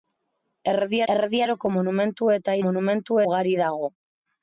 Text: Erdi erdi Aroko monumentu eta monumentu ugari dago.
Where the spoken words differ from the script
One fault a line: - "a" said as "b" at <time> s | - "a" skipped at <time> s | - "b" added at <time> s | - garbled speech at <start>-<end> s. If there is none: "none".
none